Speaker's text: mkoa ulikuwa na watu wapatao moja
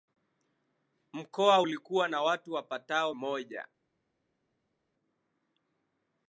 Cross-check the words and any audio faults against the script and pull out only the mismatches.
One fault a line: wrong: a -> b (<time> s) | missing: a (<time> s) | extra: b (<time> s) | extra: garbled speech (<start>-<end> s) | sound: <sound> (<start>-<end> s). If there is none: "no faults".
no faults